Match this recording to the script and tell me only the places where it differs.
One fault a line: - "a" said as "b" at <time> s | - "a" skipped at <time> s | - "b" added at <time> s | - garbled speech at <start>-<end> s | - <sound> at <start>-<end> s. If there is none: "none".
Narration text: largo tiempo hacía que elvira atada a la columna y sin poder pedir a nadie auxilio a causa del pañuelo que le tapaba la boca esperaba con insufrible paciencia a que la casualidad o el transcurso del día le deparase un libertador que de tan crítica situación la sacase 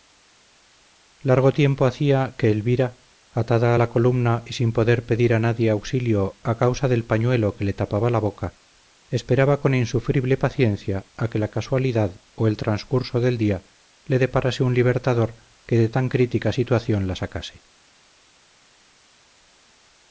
none